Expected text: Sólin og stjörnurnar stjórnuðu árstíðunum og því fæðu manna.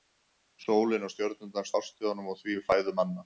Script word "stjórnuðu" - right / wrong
wrong